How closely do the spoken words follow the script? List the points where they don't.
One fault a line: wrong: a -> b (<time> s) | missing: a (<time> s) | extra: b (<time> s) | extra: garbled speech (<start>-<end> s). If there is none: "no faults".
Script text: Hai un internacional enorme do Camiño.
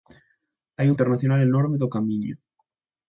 no faults